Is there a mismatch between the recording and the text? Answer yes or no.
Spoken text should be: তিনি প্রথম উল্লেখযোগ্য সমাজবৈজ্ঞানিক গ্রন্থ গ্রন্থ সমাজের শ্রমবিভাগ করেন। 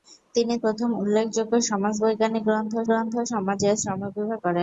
no